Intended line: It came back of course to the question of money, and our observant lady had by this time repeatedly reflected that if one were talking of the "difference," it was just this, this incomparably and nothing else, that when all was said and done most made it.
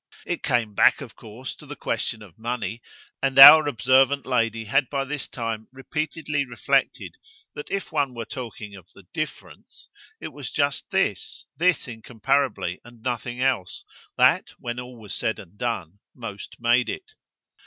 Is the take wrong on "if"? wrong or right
right